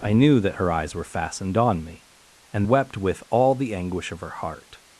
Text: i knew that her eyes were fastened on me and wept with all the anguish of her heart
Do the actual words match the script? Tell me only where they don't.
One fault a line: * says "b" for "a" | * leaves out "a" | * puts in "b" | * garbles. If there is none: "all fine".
all fine